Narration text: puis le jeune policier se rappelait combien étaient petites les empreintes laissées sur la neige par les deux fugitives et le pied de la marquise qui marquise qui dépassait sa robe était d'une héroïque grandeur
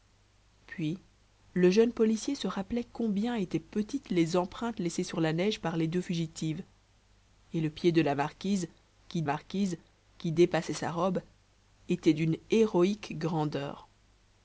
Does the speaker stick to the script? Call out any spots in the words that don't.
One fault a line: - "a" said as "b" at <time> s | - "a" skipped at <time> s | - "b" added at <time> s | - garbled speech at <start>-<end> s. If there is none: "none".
none